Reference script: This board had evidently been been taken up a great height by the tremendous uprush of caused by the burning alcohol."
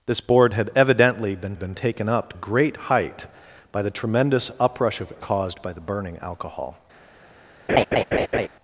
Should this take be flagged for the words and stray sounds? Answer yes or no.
yes